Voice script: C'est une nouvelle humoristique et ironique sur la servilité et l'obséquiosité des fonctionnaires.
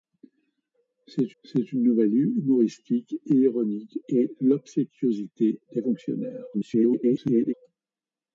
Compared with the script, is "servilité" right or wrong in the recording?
wrong